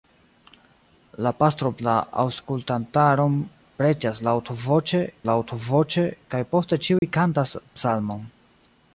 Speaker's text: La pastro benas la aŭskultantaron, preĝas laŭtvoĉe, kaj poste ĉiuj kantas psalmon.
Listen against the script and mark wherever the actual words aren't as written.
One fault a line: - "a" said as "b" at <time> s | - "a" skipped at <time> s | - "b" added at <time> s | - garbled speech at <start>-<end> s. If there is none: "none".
- "benas" skipped at 1.7 s
- "laŭtvoĉe" added at 5.3 s